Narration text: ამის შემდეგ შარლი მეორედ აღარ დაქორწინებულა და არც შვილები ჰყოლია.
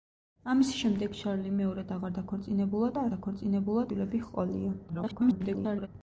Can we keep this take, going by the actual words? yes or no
no